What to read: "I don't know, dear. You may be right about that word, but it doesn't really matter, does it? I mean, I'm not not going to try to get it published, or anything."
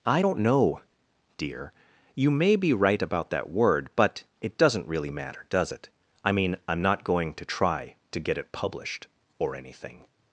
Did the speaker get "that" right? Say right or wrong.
right